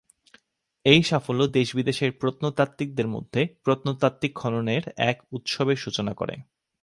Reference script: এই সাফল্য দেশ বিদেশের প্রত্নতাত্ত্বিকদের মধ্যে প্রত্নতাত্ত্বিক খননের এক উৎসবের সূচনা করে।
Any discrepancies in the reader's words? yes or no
no